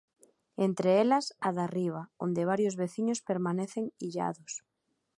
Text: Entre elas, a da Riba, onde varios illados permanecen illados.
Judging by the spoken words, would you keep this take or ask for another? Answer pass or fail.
fail